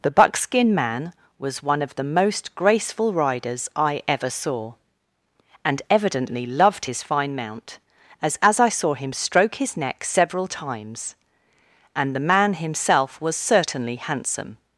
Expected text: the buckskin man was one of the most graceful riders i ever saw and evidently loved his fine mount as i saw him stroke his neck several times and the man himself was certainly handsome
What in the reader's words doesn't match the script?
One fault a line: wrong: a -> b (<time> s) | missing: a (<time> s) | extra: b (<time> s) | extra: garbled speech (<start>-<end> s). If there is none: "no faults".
extra: as (8.4 s)